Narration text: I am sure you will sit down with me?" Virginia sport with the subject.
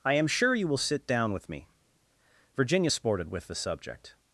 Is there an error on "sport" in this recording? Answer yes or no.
yes